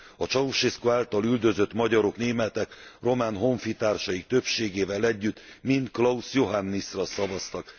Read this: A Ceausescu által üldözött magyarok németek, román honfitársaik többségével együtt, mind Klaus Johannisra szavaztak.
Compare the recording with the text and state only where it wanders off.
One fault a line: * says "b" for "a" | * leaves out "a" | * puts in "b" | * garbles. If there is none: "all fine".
all fine